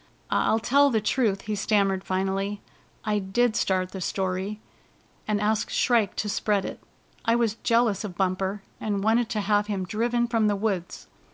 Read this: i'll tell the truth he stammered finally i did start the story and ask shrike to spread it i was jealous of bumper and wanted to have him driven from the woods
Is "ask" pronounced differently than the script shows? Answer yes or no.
no